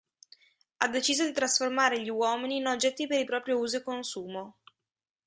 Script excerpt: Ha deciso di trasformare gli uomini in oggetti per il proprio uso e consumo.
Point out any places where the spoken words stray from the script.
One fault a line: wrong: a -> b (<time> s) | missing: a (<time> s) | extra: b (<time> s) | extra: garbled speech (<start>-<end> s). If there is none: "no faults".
no faults